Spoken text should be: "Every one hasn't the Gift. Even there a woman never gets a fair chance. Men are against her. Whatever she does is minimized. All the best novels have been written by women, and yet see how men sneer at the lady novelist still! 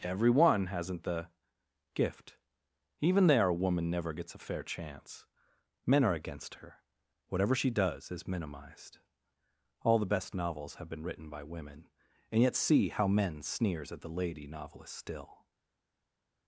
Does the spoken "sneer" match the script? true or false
false